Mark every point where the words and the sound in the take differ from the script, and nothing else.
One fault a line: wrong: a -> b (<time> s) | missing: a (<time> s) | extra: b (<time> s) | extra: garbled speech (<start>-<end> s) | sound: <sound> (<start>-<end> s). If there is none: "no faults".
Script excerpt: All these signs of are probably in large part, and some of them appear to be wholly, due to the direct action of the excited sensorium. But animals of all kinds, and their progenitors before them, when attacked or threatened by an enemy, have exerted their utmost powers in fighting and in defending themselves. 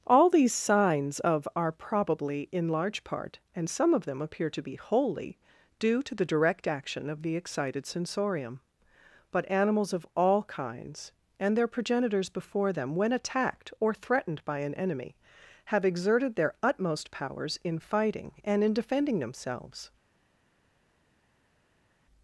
no faults